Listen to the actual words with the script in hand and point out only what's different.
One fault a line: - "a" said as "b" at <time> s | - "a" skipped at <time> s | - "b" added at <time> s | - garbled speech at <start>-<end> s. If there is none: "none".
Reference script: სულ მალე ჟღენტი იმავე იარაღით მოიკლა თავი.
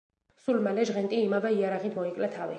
none